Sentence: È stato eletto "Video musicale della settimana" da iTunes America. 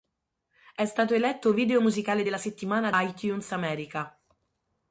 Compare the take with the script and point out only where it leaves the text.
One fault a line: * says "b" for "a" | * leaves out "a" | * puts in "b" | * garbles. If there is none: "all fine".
* leaves out "da"